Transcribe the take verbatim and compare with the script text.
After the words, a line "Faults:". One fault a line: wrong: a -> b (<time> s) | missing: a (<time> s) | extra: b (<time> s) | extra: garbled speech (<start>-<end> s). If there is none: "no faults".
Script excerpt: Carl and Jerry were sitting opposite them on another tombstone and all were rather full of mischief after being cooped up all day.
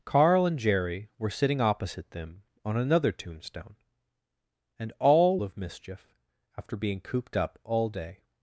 Carl and Jerry were sitting opposite them on another tombstone and all of mischief after being cooped up all day.
Faults:
missing: were rather full (5.4 s)